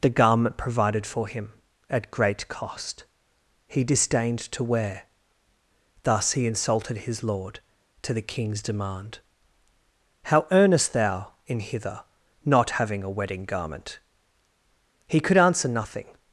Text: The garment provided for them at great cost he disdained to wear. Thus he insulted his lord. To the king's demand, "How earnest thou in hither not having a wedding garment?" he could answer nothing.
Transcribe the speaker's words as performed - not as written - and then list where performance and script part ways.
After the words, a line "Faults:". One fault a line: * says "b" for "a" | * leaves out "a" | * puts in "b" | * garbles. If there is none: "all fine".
The garment provided for him at great cost he disdained to wear. Thus he insulted his lord. To the king's demand, "How earnest thou in hither not having a wedding garment?" he could answer nothing.
Faults:
* says "him" for "them"